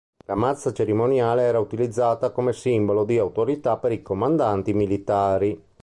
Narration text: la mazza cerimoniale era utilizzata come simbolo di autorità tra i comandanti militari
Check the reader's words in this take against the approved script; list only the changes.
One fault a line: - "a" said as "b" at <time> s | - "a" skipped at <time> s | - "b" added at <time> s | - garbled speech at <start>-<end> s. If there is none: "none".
- "tra" said as "per" at 3.8 s